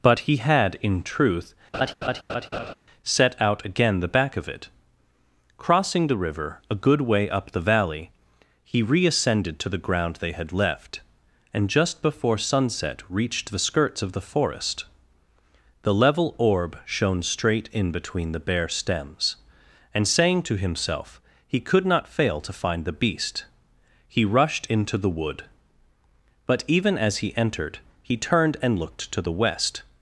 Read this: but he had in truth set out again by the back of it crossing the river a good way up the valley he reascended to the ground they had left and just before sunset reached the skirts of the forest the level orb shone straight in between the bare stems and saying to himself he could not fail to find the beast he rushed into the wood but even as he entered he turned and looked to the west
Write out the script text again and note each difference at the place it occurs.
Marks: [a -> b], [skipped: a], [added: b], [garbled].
but he had in truth set out again [skipped: by] the back of it crossing the river a good way up the valley he reascended to the ground they had left and just before sunset reached the skirts of the forest the level orb shone straight in between the bare stems and saying to himself he could not fail to find the beast he rushed into the wood but even as he entered he turned and looked to the west